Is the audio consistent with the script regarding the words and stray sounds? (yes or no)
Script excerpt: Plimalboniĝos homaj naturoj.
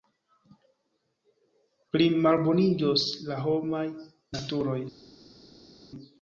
no